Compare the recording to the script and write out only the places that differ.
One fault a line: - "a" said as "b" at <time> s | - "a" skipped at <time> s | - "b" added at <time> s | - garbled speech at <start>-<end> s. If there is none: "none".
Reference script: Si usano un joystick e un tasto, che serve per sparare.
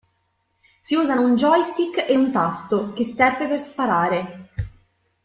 none